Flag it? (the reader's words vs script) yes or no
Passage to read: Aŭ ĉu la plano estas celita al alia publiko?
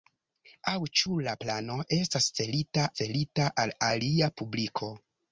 yes